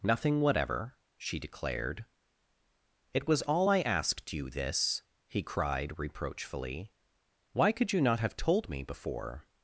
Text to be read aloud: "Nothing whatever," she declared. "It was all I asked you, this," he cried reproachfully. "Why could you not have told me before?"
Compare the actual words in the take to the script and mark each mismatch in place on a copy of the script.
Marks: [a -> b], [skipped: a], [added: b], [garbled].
"Nothing whatever," she declared. "It was all I asked you, this," he cried reproachfully. "Why could you not have told me before?"